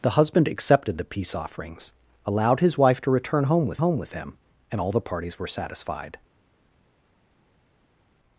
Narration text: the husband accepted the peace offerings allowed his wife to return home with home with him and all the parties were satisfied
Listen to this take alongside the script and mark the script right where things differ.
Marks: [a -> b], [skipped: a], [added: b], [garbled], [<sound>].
the husband accepted the peace offerings allowed his wife to return home with home with him and all the parties were satisfied